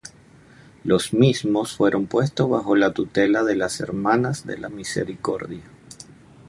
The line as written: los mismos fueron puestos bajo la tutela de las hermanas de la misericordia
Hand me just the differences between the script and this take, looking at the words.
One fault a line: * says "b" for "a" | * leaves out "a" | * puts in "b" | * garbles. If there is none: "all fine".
all fine